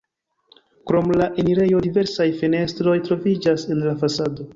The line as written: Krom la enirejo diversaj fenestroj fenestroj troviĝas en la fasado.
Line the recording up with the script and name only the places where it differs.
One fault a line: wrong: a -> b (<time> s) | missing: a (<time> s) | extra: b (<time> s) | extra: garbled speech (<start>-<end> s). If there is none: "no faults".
missing: fenestroj (3.0 s)